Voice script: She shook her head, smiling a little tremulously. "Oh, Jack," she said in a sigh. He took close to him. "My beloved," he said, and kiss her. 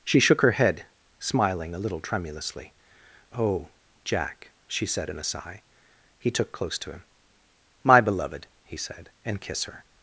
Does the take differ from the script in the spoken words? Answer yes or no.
no